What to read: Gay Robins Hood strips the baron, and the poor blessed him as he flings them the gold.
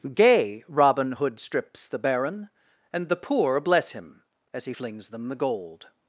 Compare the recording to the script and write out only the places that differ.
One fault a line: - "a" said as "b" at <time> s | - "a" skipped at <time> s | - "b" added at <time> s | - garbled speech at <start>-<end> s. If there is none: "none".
- "Robins" said as "Robin" at 0.7 s
- "blessed" said as "bless" at 3.6 s